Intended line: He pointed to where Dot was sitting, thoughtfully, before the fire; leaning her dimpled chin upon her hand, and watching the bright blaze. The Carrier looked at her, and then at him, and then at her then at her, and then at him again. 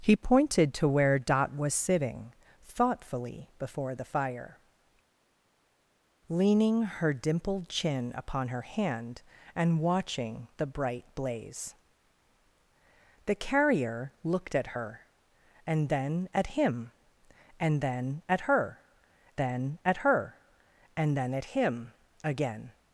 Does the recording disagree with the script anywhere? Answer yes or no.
no